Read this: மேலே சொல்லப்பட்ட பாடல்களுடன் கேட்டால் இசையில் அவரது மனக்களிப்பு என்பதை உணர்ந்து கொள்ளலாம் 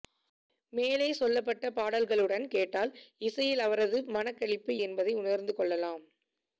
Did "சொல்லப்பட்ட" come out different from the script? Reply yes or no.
no